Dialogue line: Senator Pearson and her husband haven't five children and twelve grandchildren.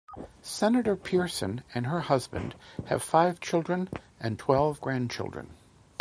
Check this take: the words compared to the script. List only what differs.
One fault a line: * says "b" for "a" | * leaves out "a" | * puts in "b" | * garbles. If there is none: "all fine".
* says "have" for "haven't"